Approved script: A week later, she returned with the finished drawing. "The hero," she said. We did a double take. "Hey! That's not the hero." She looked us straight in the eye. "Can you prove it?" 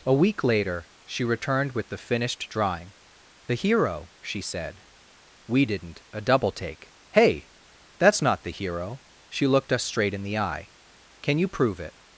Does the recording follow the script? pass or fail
fail